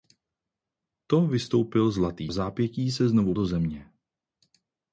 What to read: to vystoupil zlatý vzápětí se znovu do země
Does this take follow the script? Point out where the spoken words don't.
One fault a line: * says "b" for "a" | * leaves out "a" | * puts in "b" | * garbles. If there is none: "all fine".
all fine